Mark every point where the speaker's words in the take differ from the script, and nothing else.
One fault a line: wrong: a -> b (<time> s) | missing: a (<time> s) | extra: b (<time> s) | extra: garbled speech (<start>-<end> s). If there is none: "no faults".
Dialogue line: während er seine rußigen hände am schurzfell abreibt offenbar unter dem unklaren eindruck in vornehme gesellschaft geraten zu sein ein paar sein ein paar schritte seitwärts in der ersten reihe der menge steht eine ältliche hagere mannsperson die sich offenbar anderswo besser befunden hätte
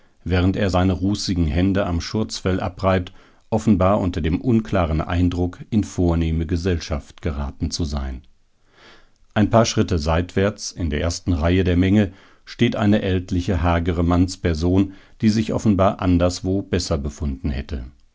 missing: sein ein paar (9.7 s)